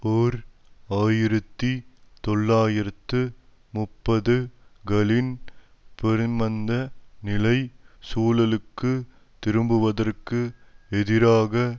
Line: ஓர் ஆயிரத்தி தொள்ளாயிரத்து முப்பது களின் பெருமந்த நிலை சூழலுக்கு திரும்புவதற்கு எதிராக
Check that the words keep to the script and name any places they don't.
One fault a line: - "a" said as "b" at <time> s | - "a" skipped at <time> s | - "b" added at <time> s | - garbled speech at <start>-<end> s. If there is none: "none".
none